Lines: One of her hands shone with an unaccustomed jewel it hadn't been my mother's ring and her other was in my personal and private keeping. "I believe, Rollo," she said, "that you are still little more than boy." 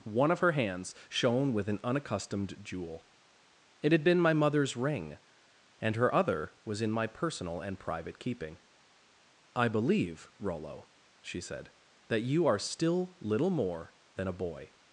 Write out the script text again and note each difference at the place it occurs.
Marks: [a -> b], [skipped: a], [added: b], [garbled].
One of her hands shone with an unaccustomed jewel it [hadn't -> had] been my mother's ring and her other was in my personal and private keeping. "I believe, Rollo," she said, "that you are still little more than [added: a] boy."